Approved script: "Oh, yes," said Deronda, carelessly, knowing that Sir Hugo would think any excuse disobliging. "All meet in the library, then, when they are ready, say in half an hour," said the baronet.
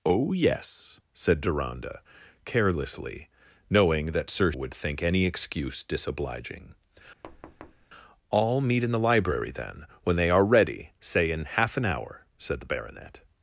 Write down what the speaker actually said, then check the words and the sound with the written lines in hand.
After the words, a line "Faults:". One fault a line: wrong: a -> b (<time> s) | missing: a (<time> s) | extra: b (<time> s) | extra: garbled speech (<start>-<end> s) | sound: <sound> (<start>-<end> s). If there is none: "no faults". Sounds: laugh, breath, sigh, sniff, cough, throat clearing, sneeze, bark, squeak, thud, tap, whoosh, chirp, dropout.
"Oh, yes," said Deronda, carelessly, knowing that Sir Would think any excuse disobliging. "All meet in the library, then, when they are ready, say in half an hour," said the baronet.
Faults:
missing: Hugo (4.5 s)
sound: thud (7.2-7.9 s)